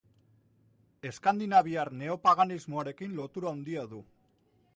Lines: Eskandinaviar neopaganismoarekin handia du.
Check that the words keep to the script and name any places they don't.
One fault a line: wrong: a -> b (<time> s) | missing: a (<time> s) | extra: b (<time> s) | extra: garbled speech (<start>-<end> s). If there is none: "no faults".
extra: lotura (3.2 s)